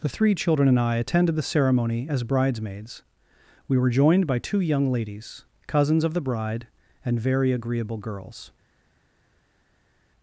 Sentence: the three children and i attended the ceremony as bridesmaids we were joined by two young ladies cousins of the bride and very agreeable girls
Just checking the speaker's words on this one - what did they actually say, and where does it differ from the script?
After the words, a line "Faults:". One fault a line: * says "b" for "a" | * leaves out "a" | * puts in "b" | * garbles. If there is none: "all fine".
the three children and i attended the ceremony as bridesmaids we were joined by two young ladies cousins of the bride and very agreeable girls
Faults:
all fine